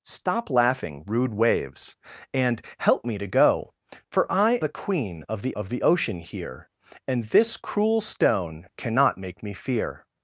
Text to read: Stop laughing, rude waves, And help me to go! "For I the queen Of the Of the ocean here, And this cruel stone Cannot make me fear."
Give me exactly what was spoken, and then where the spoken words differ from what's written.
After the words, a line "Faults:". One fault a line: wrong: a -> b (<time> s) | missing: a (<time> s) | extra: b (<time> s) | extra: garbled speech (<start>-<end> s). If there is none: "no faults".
Stop laughing, rude waves, And help me to go! "For I the queen Of the Of the ocean here, And this cruel stone Cannot make me fear."
Faults:
no faults